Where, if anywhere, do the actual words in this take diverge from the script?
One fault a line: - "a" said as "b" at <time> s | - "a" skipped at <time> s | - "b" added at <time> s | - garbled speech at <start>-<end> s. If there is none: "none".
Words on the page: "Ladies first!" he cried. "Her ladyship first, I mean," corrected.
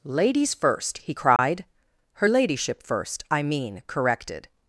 none